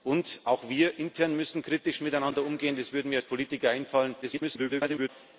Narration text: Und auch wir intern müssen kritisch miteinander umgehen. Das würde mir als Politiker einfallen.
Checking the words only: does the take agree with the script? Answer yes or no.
no